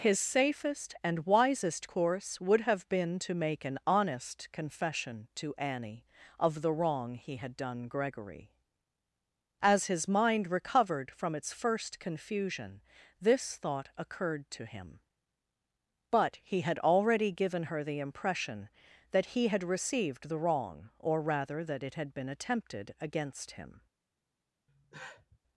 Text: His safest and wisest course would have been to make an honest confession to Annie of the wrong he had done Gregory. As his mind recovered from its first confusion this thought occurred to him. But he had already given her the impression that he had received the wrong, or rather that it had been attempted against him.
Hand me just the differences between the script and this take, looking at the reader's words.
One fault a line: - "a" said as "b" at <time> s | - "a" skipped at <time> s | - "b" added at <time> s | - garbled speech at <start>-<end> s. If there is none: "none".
none